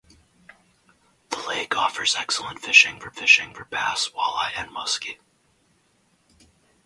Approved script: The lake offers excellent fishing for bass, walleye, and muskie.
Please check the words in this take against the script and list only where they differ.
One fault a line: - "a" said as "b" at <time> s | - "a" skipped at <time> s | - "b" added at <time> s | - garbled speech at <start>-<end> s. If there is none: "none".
- "fishing for" added at 3.2 s